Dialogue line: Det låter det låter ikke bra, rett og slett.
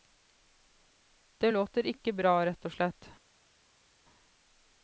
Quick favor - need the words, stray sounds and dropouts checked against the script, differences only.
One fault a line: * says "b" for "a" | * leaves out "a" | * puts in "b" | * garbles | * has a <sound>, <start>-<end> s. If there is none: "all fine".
* leaves out "det låter"